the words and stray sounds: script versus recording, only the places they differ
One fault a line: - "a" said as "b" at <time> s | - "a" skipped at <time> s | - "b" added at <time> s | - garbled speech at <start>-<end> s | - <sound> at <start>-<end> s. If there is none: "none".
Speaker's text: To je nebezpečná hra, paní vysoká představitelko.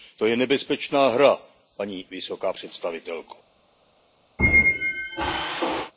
- squeak at 4.4-5.9 s